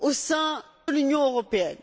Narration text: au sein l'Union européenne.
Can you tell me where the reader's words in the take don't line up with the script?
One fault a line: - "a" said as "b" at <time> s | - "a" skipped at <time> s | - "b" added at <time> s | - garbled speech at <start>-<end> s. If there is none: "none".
none